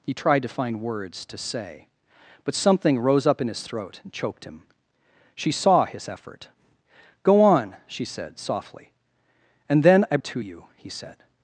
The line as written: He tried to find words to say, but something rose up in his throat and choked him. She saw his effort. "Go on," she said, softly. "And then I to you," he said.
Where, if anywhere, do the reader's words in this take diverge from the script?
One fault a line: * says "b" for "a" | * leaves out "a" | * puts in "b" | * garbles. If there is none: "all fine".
all fine